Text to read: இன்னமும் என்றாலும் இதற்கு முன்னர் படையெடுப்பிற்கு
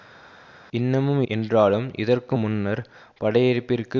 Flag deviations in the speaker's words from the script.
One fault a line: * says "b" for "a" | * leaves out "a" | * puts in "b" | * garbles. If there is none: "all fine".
all fine